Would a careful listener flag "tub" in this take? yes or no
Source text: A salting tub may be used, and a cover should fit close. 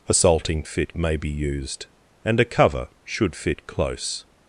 yes